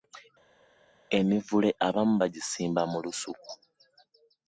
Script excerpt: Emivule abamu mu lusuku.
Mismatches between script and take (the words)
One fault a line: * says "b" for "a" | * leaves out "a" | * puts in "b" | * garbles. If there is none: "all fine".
* puts in "bagisimba"